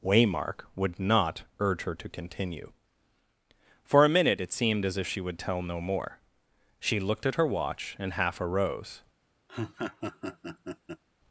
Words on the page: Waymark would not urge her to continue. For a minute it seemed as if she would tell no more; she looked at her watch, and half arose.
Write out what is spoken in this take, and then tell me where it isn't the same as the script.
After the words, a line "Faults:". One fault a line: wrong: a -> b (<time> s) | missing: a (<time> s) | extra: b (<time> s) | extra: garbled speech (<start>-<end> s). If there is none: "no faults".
Waymark would not urge her to continue. For a minute it seemed as if she would tell no more; she looked at her watch, and half arose.
Faults:
no faults